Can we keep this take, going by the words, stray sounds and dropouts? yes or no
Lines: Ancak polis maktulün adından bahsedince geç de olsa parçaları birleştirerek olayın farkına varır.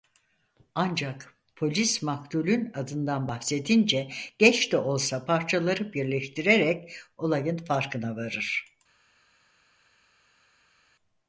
yes